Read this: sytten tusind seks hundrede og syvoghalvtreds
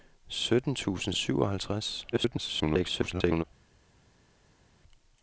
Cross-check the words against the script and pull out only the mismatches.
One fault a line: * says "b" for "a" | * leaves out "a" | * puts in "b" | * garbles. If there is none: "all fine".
* leaves out "seks hundrede"
* garbles